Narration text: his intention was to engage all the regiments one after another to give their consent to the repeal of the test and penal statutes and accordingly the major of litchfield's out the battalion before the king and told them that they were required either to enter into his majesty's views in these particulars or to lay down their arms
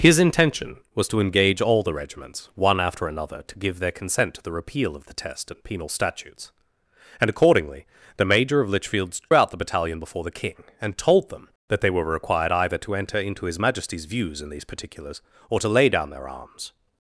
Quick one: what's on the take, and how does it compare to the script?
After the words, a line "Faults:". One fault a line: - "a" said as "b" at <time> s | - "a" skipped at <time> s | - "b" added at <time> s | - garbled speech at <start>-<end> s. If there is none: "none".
his intention was to engage all the regiments one after another to give their consent to the repeal of the test and penal statutes and accordingly the major of litchfield's out the battalion before the king and told them that they were required either to enter into his majesty's views in these particulars or to lay down their arms
Faults:
none